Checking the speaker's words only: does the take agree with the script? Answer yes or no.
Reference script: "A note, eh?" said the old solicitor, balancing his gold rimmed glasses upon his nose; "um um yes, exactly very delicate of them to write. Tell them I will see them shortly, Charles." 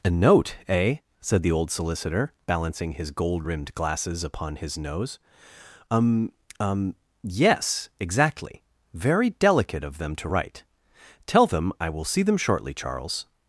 yes